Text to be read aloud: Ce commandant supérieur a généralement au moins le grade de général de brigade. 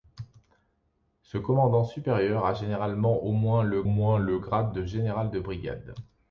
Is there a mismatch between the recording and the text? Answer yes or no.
yes